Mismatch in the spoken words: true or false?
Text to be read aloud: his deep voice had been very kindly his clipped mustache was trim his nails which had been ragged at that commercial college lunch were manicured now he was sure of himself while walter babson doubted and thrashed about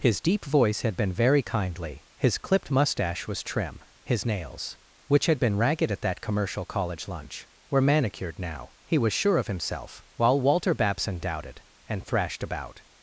false